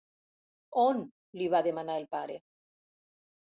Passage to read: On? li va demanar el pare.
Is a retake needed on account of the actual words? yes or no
no